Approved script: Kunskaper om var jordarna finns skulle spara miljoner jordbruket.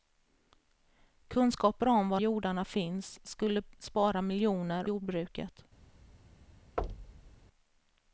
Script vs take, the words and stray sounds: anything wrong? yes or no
yes